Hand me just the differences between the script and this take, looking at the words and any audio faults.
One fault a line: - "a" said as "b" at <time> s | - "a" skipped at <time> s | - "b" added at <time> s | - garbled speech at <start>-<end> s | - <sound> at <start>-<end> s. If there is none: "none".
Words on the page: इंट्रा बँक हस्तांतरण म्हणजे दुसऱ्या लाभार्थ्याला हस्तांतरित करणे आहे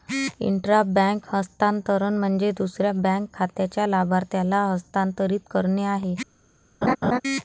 - "बँक खात्याच्या" added at 3.0 s
- laugh at 6.8-7.2 s